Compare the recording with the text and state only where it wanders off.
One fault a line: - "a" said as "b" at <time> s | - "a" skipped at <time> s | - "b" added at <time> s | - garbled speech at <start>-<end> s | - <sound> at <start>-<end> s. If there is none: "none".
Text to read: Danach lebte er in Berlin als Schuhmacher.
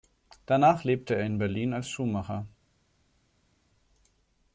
none